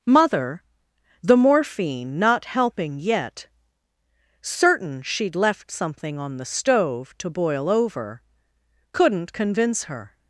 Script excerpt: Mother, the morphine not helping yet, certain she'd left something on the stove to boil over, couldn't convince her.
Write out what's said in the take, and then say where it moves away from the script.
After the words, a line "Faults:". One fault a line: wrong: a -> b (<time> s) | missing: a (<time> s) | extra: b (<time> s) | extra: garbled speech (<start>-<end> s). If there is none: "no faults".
Mother, the morphine not helping yet, certain she'd left something on the stove to boil over, couldn't convince her.
Faults:
no faults